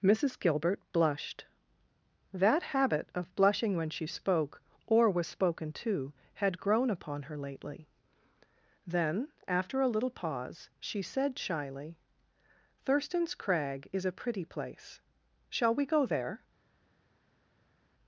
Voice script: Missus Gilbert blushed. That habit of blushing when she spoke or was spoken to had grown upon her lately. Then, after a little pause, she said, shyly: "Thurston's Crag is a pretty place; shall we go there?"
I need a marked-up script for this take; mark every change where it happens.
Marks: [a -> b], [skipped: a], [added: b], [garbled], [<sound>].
Missus Gilbert blushed. That habit of blushing when she spoke or was spoken to had grown upon her lately. Then, after a little pause, she said, shyly: "Thurston's Crag is a pretty place; shall we go there?"